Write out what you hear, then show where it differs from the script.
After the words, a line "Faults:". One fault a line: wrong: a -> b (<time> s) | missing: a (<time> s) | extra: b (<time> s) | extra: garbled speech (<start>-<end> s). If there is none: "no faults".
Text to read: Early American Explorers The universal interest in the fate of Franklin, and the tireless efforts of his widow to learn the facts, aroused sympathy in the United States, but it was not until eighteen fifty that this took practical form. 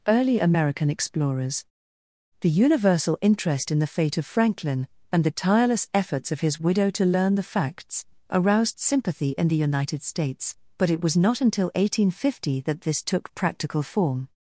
Early American Explorers The universal interest in the fate of Franklin, and the tireless efforts of his widow to learn the facts, aroused sympathy in the United States, but it was not until eighteen fifty that this took practical form.
Faults:
no faults